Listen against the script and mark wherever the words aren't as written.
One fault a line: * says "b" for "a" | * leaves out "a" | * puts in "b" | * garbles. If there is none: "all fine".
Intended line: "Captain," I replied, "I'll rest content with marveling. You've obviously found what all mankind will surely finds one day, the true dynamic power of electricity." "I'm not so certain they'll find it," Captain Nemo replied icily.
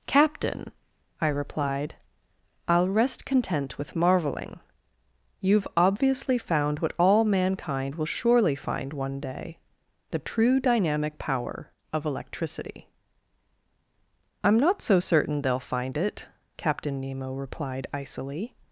* says "find" for "finds"